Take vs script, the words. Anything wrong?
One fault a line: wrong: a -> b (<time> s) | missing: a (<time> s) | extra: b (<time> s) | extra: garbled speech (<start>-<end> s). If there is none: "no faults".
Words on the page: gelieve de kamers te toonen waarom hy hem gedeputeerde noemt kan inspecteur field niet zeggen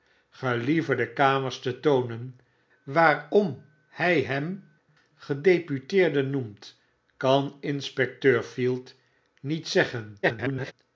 extra: garbled speech (10.2-10.7 s)